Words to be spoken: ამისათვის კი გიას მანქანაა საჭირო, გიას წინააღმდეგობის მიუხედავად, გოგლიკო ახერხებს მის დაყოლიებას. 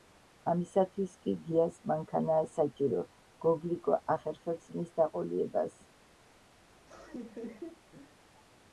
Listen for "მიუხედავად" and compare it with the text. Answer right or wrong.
wrong